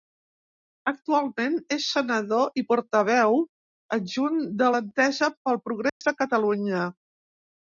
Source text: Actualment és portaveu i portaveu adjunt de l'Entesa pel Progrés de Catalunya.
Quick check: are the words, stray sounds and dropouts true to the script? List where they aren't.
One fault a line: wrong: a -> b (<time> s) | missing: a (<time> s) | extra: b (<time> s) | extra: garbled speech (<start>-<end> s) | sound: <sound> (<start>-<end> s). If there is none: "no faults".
wrong: portaveu -> senador (2.0 s)
sound: dropout (5.9-6.0 s)